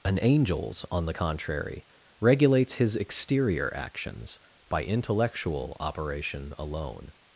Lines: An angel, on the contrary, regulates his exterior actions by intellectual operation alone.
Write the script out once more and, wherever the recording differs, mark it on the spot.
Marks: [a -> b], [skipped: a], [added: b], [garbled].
An [angel, -> angels] on the contrary, regulates his exterior actions by intellectual operation alone.